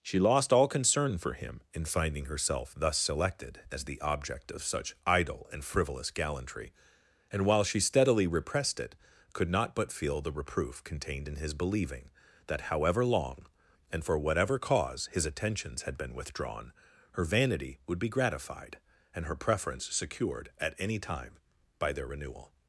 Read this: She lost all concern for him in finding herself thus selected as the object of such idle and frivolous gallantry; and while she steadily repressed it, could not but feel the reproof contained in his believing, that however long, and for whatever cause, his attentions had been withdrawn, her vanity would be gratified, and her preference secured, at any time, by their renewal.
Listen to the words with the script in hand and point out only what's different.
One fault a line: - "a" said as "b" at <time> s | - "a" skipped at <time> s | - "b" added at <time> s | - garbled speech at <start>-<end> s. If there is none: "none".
none